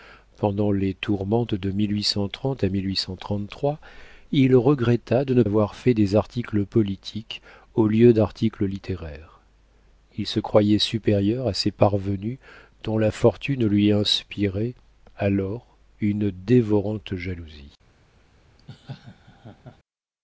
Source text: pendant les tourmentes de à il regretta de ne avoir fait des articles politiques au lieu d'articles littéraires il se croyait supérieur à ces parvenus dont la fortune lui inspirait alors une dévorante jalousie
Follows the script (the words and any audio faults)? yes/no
no